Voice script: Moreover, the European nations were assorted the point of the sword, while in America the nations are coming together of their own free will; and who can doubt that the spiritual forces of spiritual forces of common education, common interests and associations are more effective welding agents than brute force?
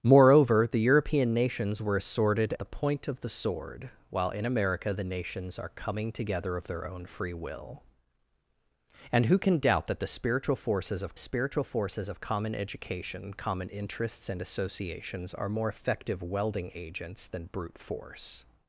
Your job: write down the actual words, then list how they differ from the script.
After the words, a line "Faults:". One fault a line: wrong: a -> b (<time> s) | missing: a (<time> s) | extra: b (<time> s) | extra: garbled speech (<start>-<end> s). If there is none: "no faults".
Moreover, the European nations were assorted the point of the sword, while in America the nations are coming together of their own free will; and who can doubt that the spiritual forces of spiritual forces of common education, common interests and associations are more effective welding agents than brute force?
Faults:
no faults